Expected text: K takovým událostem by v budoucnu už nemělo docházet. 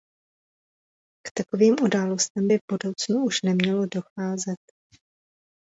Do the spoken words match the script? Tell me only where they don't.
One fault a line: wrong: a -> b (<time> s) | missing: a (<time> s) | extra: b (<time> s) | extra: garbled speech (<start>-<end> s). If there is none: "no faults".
no faults